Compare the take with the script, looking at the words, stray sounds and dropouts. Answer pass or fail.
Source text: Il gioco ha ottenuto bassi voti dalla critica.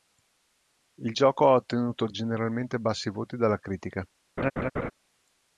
fail